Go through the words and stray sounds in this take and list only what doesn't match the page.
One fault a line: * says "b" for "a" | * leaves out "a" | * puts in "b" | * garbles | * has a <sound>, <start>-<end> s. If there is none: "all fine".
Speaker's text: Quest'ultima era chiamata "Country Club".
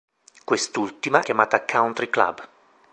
* leaves out "era"